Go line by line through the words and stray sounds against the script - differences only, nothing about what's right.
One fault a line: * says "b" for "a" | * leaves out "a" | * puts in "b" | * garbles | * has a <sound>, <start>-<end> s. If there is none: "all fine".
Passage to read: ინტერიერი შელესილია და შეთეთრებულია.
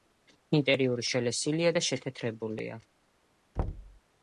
* has a thud, 3.6-4.0 s